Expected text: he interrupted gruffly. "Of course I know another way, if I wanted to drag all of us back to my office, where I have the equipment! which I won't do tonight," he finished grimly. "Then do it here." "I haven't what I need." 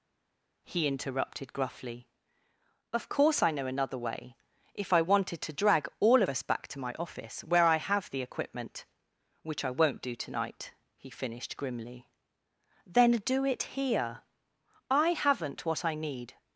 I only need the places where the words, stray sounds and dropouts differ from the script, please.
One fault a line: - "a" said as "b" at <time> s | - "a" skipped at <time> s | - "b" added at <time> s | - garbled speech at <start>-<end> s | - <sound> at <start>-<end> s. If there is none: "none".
- "of" skipped at 6.2 s